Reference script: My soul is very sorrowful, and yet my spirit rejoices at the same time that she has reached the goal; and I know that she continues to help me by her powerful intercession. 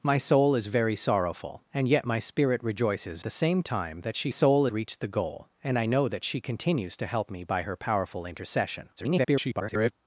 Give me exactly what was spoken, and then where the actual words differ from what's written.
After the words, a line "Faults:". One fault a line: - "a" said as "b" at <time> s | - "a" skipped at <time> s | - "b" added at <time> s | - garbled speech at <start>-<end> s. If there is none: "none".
My soul is very sorrowful, and yet my spirit rejoices the same time that she soul reached the goal; and I know that she continues to help me by her powerful intercession. [garbled]
Faults:
- "at" skipped at 3.2 s
- "has" said as "soul" at 4.3 s
- garbled speech at 9.0-9.9 s